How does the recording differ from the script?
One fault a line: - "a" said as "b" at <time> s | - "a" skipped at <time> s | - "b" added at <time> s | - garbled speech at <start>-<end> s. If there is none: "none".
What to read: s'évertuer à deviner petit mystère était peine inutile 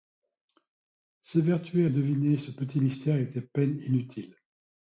- "ce" added at 2.4 s